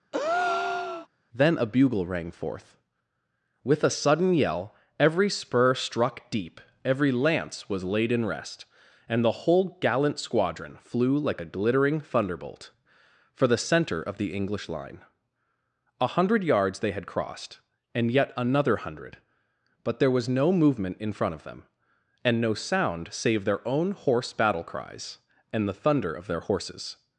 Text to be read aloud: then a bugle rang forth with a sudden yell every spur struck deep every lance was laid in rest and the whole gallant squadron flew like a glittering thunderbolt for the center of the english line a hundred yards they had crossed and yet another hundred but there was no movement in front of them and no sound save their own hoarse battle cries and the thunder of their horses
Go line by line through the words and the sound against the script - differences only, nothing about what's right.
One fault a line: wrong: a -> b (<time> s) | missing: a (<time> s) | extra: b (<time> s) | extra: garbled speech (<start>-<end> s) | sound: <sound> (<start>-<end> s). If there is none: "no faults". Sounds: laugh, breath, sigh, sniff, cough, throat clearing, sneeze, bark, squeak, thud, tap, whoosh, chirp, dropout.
sound: breath (0.1-1.1 s)